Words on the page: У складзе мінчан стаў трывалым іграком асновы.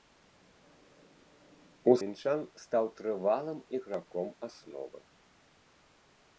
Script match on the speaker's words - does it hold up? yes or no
no